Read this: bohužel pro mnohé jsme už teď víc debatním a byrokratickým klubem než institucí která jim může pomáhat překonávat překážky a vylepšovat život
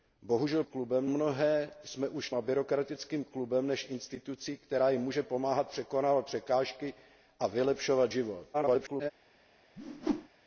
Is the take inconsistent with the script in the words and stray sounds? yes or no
yes